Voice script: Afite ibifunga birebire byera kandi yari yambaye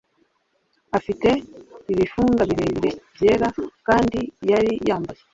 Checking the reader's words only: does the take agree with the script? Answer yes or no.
yes